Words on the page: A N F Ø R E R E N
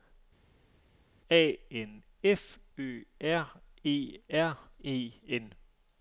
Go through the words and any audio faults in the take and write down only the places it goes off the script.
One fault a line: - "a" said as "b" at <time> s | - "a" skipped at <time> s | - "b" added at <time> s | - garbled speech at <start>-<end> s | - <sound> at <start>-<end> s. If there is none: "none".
none